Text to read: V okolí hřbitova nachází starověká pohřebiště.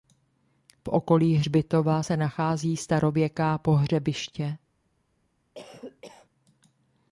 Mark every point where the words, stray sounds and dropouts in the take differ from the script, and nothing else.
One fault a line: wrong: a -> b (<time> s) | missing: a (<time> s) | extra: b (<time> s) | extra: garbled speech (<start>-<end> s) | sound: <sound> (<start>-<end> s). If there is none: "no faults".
extra: se (2.0 s)
sound: cough (5.5-6.3 s)